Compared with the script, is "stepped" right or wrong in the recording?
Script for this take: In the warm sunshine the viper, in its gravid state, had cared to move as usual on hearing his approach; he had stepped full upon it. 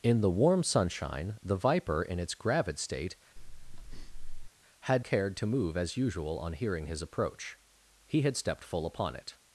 right